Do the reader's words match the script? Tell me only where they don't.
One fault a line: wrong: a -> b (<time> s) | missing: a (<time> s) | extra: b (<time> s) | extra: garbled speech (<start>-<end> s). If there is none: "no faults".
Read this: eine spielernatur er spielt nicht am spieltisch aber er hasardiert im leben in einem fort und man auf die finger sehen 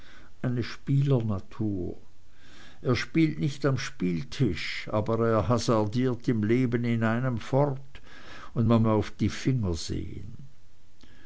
no faults